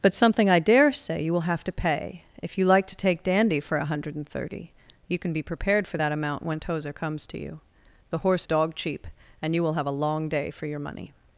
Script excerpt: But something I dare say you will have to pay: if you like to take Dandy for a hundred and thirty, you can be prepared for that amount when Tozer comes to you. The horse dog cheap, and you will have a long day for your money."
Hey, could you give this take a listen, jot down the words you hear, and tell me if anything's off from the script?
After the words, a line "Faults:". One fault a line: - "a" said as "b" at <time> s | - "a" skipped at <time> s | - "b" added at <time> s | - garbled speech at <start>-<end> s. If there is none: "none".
But something I dare say you will have to pay: if you like to take Dandy for a hundred and thirty, you can be prepared for that amount when Tozer comes to you. The horse dog cheap, and you will have a long day for your money."
Faults:
none